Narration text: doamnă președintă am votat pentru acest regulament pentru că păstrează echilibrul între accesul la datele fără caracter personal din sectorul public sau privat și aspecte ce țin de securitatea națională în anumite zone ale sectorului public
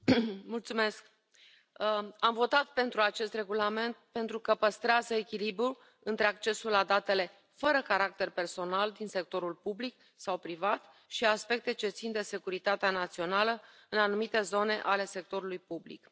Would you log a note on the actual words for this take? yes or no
no